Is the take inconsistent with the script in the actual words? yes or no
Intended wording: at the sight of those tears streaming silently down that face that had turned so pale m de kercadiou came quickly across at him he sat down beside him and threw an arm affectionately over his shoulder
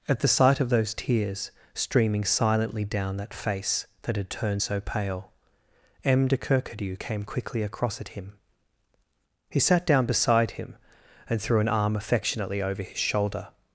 no